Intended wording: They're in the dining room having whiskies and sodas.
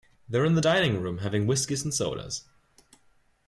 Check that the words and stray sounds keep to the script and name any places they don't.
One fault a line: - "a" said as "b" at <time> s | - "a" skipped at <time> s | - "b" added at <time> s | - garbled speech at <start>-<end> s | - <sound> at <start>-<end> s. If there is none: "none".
none